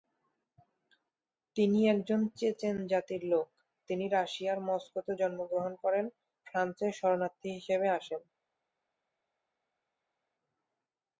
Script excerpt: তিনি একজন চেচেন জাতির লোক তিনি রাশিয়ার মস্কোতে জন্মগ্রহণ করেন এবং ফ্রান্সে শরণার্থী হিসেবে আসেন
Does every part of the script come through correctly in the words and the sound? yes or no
no